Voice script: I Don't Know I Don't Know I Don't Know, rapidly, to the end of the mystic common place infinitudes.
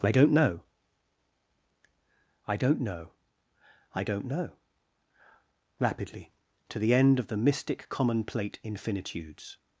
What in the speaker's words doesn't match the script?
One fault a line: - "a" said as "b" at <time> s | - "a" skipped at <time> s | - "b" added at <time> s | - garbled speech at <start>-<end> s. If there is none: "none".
- "place" said as "plate" at 8.2 s